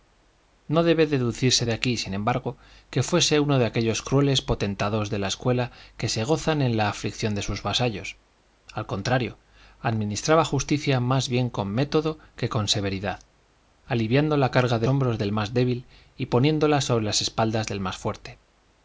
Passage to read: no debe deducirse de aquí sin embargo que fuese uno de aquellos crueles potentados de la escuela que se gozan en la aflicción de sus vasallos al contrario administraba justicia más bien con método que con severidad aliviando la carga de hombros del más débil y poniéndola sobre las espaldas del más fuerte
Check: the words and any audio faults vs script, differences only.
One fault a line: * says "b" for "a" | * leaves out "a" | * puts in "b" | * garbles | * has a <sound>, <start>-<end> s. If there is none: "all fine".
all fine